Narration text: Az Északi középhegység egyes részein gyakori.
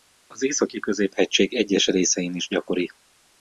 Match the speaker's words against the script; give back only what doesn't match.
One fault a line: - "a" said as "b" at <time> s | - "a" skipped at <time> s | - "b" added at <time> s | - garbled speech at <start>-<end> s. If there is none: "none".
- "is" added at 2.4 s